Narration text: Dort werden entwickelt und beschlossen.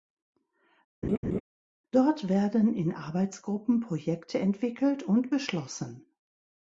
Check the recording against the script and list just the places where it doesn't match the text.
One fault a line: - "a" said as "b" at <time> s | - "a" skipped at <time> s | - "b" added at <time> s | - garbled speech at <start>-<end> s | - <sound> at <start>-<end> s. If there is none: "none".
- laugh at 1.0-1.4 s
- "in Arbeitsgruppen Projekte" added at 2.7 s